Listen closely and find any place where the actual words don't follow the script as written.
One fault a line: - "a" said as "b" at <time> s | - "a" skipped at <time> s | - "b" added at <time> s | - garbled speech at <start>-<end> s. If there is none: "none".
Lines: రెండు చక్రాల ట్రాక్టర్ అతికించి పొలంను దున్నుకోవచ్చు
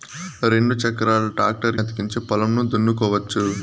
none